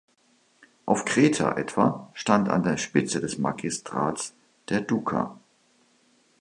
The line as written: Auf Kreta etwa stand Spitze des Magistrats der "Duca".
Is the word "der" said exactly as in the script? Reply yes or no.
yes